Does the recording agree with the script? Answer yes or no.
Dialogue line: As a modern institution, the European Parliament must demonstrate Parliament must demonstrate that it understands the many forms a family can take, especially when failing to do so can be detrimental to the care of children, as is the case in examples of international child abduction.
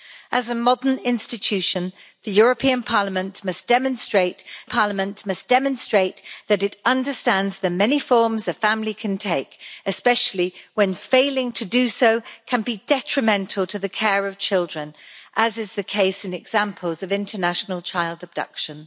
yes